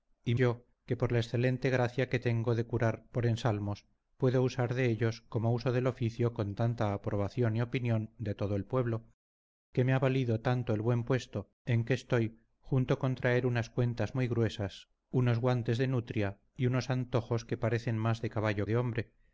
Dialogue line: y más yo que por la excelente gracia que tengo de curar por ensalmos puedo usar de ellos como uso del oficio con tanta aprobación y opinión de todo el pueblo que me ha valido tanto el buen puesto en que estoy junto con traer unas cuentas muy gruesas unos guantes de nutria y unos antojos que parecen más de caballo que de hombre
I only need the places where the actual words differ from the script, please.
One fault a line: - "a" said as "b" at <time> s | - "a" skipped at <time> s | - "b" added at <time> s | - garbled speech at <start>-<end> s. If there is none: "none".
- "más" skipped at 0.3 s
- "que" skipped at 18.7 s